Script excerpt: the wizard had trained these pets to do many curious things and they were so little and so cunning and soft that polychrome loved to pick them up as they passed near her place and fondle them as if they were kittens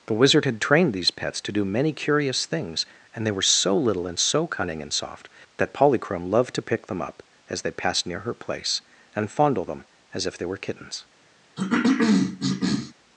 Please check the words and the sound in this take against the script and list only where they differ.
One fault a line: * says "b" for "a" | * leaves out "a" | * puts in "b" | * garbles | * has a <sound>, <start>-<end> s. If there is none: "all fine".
* has a cough, 11.6-12.9 s